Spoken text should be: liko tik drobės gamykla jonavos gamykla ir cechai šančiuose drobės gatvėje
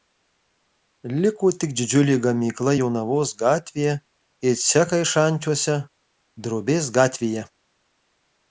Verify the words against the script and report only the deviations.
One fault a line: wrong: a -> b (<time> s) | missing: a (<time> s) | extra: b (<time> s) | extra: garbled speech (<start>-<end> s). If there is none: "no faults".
wrong: drobės -> didžiulė (1.8 s)
wrong: gamykla -> gatvėje (3.4 s)